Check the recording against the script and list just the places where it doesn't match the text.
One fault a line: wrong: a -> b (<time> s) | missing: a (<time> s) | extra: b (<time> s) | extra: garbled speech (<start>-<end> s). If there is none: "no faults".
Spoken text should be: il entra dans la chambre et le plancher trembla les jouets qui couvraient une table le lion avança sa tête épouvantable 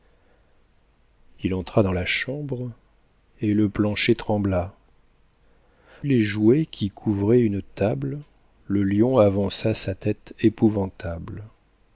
no faults